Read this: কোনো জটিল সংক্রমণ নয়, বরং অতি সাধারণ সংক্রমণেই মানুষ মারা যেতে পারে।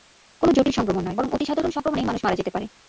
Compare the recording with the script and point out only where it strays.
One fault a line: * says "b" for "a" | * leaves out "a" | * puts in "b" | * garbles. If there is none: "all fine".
all fine